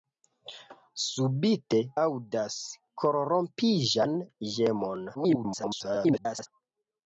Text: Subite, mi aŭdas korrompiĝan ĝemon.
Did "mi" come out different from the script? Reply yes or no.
yes